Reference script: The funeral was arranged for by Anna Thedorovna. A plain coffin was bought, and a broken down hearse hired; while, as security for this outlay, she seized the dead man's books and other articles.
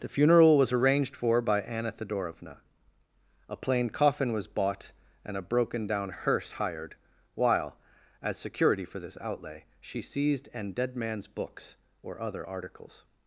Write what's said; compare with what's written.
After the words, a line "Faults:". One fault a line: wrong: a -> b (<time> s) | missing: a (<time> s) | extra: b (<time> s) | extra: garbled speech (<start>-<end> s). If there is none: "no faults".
The funeral was arranged for by Anna Thedorovna. A plain coffin was bought, and a broken down hearse hired; while, as security for this outlay, she seized an dead man's books or other articles.
Faults:
wrong: the -> an (10.5 s)
wrong: and -> or (12.0 s)